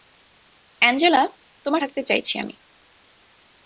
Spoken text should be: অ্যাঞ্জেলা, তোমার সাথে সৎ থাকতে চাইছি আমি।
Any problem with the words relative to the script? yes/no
yes